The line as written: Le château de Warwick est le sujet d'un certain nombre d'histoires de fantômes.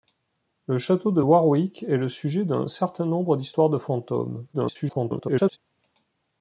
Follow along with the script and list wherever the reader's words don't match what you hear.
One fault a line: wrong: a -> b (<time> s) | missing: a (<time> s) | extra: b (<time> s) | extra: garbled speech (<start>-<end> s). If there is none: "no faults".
extra: garbled speech (4.5-5.6 s)